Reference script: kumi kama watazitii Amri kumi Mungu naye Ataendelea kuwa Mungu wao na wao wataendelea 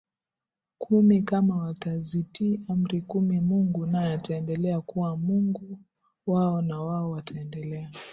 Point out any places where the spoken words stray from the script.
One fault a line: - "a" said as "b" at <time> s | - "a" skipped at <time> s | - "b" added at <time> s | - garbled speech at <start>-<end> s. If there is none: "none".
none